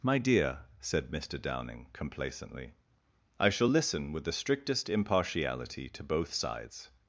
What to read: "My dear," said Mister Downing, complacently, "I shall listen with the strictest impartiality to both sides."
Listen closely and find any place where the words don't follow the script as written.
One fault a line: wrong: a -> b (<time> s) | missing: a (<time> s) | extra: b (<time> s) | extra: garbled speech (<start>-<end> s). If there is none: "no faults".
no faults